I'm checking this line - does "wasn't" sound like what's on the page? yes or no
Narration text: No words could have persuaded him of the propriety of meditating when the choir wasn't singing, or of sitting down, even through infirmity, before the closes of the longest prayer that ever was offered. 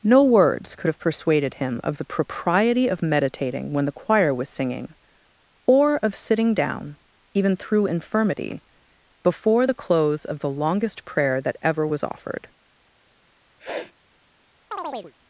no